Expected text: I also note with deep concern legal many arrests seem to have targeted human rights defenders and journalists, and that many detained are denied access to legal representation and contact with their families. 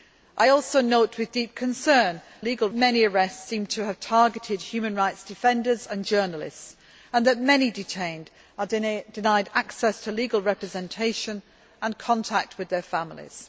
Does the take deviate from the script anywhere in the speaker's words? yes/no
no